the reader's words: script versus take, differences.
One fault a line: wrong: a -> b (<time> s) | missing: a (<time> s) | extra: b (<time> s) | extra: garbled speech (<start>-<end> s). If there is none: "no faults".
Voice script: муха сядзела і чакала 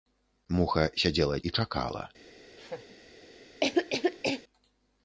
no faults